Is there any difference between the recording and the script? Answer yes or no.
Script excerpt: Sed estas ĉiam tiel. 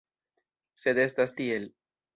yes